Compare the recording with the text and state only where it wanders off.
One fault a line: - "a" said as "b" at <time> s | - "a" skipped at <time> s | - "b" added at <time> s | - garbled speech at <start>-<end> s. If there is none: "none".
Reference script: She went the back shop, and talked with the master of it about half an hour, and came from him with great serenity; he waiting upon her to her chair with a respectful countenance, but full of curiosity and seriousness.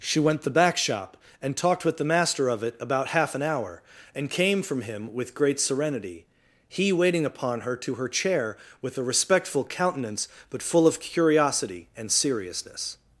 none